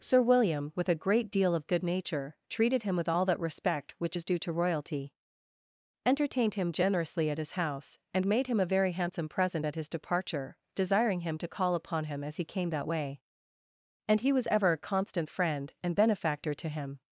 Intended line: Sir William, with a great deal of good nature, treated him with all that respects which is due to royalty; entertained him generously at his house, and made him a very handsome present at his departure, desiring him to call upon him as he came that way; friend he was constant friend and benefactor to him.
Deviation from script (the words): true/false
true